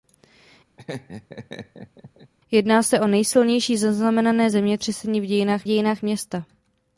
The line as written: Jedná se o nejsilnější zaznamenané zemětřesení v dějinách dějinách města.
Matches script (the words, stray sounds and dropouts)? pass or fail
fail